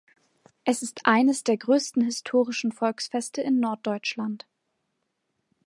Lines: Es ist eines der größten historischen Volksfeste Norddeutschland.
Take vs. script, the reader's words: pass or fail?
fail